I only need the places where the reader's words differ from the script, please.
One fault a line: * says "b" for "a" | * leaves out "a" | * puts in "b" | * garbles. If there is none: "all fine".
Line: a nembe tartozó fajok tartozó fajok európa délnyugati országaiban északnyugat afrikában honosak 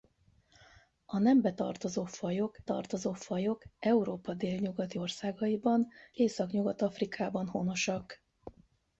all fine